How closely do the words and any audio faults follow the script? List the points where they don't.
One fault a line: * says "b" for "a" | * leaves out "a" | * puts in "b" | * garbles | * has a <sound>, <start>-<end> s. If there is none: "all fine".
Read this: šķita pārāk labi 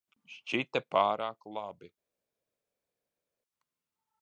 all fine